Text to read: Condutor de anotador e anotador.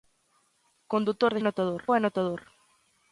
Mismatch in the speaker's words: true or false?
false